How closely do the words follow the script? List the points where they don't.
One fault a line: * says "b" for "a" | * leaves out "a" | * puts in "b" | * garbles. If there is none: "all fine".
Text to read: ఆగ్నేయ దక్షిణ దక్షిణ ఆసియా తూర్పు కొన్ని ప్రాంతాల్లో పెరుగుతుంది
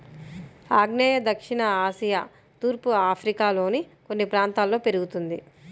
* leaves out "దక్షిణ"
* puts in "ఆఫ్రికాలోని"